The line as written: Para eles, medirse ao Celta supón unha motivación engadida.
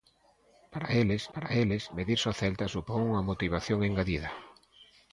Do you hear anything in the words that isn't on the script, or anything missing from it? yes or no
yes